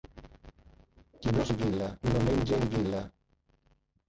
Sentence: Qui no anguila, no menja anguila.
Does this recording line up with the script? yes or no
yes